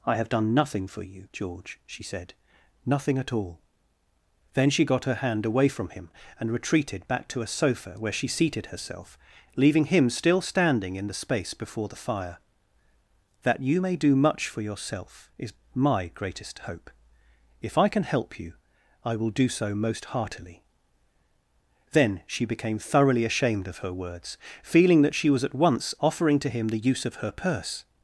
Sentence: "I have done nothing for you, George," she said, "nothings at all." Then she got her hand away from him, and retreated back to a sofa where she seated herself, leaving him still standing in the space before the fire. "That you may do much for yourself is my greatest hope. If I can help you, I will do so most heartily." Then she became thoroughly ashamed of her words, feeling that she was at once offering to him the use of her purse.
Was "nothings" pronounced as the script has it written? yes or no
no